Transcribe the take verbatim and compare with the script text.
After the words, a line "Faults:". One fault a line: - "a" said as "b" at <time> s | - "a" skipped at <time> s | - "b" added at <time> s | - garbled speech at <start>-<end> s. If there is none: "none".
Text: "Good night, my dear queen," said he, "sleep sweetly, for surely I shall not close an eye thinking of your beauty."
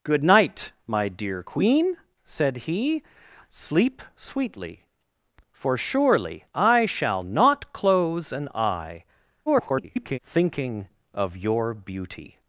"Good night, my dear queen," said he, "sleep sweetly, for surely I shall not close an eye [garbled] thinking of your beauty."
Faults:
- garbled speech at 9.5-10.2 s